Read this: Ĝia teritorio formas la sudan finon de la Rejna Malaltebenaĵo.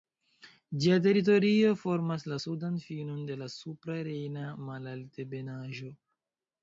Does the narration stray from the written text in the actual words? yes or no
yes